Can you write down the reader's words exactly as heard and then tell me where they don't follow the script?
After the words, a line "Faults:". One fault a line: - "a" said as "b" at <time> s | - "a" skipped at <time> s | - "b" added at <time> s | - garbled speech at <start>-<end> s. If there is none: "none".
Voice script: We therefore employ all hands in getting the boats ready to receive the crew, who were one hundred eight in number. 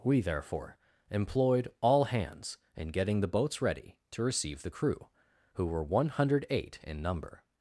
We therefore employed all hands in getting the boats ready to receive the crew, who were one hundred eight in number.
Faults:
- "employ" said as "employed" at 1.1 s